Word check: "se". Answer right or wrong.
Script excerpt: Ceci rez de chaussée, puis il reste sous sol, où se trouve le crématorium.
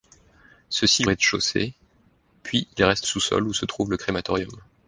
right